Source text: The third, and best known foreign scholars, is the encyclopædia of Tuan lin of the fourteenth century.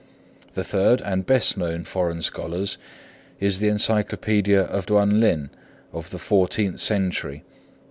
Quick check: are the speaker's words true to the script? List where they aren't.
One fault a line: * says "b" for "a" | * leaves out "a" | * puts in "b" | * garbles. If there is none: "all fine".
all fine